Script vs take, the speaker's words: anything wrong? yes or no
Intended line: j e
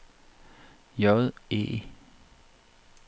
no